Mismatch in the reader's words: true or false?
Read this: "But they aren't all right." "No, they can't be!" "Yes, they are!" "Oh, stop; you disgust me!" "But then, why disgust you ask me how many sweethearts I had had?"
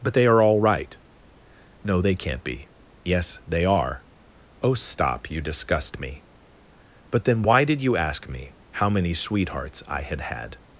true